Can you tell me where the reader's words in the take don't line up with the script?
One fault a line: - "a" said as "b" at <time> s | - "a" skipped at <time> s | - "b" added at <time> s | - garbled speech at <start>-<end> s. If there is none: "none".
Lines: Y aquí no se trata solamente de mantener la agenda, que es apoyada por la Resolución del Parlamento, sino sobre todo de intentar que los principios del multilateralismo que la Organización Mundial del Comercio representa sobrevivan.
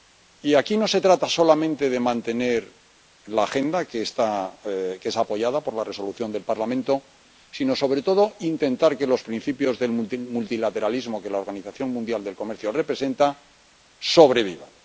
none